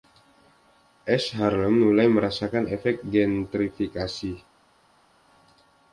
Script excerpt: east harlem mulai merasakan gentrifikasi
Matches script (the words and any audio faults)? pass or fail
fail